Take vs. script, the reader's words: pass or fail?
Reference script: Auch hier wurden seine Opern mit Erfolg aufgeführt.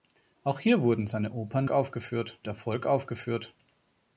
fail